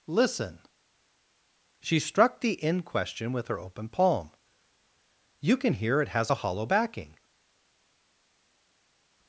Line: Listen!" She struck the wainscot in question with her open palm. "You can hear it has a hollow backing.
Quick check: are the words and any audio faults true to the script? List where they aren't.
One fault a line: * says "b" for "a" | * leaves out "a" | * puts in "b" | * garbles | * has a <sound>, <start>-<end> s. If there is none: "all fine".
* leaves out "wainscot"